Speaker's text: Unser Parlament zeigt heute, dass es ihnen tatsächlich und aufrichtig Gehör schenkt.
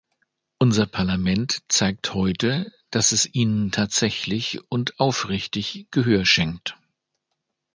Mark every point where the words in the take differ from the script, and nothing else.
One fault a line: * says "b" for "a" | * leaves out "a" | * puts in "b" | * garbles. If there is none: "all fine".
all fine